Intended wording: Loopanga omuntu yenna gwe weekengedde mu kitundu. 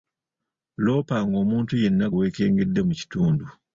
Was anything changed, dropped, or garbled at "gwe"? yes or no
yes